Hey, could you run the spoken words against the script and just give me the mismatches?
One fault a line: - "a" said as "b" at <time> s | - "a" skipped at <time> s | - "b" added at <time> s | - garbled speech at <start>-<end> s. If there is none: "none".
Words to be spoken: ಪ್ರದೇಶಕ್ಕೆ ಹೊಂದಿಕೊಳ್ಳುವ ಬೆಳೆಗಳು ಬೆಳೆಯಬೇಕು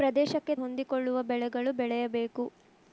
none